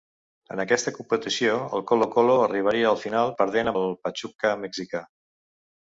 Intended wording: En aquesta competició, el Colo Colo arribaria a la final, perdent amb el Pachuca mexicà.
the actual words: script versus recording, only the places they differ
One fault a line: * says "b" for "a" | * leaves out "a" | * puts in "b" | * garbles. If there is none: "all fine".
* leaves out "amb"